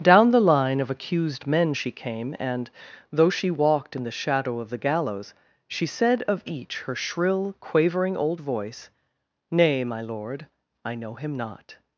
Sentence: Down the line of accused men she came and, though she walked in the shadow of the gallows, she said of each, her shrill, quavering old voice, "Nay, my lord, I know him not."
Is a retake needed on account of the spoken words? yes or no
no